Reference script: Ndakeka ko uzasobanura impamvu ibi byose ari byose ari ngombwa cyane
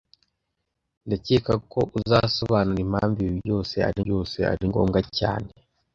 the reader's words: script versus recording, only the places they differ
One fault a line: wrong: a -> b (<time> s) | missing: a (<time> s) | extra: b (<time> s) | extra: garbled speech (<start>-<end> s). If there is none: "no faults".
no faults